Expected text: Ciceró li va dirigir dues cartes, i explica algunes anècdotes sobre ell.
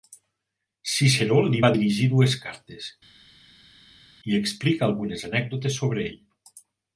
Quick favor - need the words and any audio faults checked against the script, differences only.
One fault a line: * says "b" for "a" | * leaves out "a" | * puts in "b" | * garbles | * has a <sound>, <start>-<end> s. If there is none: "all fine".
all fine